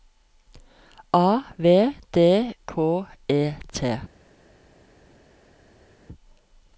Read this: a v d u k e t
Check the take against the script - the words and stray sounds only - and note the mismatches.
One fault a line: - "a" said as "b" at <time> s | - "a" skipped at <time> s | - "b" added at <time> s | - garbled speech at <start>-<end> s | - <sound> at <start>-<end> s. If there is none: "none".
- "u" skipped at 2.5 s